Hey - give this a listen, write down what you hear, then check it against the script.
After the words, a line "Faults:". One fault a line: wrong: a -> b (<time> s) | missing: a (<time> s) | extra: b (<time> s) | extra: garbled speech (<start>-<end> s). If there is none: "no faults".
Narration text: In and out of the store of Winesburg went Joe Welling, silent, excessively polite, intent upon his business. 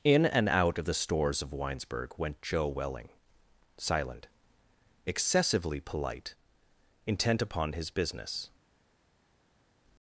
In and out of the stores of Winesburg went Joe Welling, silent, excessively polite, intent upon his business.
Faults:
wrong: store -> stores (0.9 s)